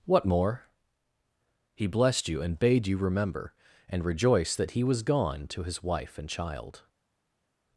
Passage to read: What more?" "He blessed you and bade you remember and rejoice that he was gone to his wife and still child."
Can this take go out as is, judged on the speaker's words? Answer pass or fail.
fail